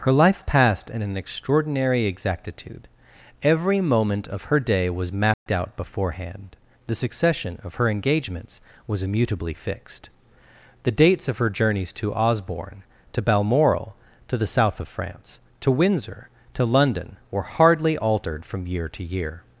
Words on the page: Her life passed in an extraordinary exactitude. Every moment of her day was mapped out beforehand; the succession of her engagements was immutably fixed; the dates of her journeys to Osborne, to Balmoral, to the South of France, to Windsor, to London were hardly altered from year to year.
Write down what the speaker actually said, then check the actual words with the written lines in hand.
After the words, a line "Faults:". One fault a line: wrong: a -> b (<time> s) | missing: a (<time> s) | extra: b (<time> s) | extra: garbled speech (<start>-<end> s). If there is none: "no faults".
Her life passed in an extraordinary exactitude. Every moment of her day was mapped out beforehand; the succession of her engagements was immutably fixed; the dates of her journeys to Osborne, to Balmoral, to the South of France, to Windsor, to London were hardly altered from year to year.
Faults:
no faults